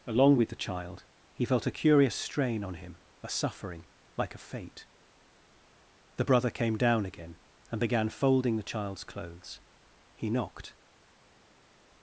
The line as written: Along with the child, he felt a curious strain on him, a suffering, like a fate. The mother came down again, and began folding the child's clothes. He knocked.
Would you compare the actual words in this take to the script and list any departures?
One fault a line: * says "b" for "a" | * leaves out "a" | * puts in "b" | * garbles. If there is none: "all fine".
* says "brother" for "mother"